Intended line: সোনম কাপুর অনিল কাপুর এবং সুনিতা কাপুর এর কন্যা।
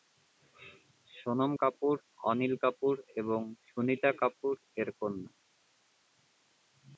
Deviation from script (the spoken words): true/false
false